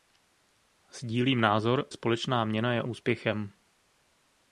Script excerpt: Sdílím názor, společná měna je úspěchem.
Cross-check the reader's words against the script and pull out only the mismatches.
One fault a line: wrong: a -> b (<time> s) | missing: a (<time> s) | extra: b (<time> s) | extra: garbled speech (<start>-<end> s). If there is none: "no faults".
no faults